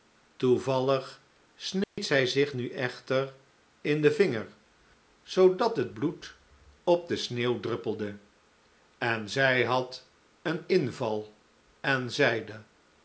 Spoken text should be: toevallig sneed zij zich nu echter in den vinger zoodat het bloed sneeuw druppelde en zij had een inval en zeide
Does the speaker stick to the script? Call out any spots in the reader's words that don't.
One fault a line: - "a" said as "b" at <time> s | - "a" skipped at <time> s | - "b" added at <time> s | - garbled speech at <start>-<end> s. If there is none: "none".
- "op de" added at 6.8 s